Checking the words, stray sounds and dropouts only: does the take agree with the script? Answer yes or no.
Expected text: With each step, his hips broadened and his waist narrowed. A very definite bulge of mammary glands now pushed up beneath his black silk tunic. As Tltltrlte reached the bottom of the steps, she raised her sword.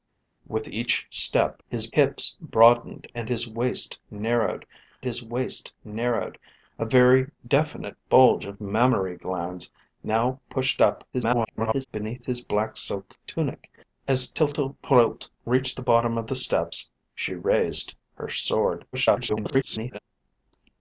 no